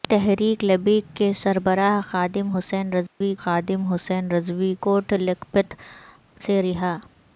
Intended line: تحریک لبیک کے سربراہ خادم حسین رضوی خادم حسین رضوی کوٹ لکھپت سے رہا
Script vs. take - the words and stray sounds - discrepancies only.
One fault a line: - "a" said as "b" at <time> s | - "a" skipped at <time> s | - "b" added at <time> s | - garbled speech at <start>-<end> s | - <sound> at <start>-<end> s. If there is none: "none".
- dropout at 3.1-3.2 s